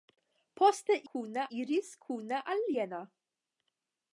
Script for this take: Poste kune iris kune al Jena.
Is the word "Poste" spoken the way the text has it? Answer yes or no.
yes